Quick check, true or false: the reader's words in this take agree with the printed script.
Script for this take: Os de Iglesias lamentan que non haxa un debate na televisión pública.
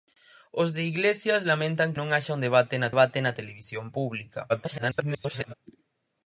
false